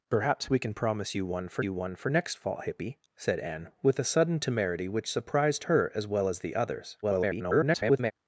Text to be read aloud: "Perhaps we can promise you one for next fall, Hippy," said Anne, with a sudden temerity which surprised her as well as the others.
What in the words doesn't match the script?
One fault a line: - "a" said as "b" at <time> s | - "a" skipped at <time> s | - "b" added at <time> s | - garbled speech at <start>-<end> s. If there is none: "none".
- "you one for" added at 1.6 s
- garbled speech at 7.0-8.1 s